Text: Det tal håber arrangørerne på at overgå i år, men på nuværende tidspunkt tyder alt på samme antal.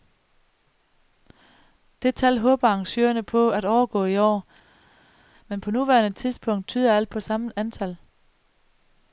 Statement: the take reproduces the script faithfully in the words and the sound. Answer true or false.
true